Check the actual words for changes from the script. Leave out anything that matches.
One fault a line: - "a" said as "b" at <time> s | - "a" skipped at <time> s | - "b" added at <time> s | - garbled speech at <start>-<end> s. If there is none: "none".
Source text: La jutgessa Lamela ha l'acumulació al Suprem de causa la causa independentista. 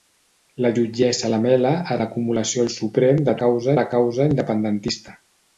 none